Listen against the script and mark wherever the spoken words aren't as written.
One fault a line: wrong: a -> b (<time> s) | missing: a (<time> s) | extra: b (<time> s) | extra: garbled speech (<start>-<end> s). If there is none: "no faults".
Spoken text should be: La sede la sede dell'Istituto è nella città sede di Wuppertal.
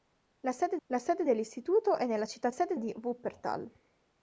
no faults